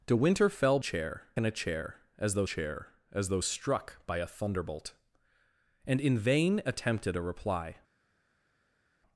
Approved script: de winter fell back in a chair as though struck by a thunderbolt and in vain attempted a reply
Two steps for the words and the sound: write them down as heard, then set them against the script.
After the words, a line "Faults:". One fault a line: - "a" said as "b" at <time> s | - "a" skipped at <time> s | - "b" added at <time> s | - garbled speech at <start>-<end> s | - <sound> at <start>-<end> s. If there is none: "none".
de winter fell chair in a chair as though chair as though struck by a thunderbolt and in vain attempted a reply
Faults:
- "back" said as "chair" at 0.8 s
- "chair as though" added at 2.4 s